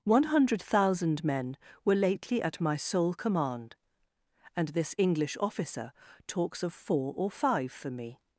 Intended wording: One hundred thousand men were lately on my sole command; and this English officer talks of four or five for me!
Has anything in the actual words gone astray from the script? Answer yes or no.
yes